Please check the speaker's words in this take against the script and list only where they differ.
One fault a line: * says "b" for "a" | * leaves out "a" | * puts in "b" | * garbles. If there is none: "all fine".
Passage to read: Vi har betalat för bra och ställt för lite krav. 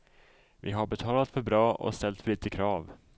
all fine